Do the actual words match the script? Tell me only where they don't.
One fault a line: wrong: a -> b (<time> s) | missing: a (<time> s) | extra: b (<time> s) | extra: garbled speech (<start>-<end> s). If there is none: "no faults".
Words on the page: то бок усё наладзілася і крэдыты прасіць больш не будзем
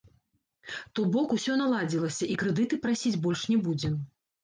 no faults